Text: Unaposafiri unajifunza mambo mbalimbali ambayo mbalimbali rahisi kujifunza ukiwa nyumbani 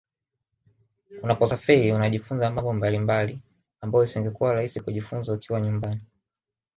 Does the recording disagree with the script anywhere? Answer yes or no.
yes